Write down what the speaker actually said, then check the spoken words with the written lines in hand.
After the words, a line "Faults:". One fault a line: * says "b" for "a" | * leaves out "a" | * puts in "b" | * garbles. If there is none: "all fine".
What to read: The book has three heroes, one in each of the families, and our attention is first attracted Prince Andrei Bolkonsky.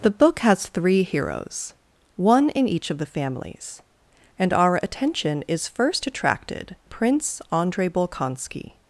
The book has three heroes, one in each of the families, and our attention is first attracted Prince Andrei Bolkonsky.
Faults:
all fine